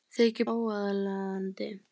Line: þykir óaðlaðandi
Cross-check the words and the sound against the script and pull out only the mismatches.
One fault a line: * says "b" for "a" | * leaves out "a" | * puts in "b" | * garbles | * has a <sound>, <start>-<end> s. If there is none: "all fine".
all fine